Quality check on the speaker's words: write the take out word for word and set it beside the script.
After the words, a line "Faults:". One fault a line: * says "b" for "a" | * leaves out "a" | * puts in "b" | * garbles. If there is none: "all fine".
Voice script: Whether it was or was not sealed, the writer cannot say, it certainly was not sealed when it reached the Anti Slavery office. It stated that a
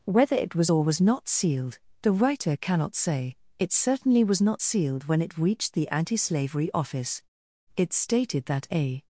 Whether it was or was not sealed, the writer cannot say, it certainly was not sealed when it reached the Anti Slavery office. It stated that a
Faults:
all fine